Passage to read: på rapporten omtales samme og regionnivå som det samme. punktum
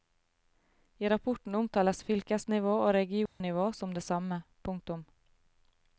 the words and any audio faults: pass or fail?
fail